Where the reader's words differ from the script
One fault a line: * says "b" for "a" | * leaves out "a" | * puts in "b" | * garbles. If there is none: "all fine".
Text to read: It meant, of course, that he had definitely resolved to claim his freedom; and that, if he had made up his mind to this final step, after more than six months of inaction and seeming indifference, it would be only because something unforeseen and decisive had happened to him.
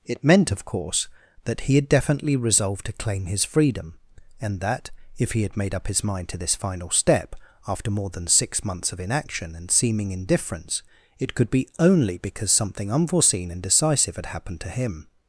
* says "could" for "would"